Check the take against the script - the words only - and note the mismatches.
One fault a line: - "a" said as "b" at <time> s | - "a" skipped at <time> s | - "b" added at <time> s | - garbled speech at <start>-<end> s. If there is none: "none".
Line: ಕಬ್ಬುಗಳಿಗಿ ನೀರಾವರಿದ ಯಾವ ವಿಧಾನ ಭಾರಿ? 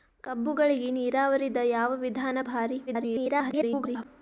- garbled speech at 2.9-4.1 s